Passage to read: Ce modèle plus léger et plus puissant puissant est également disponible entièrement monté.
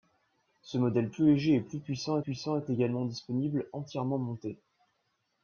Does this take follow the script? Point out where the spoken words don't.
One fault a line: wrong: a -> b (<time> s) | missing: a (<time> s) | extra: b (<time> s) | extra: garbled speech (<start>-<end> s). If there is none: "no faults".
no faults